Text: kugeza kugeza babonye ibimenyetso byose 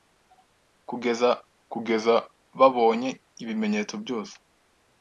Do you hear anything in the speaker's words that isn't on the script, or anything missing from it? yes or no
no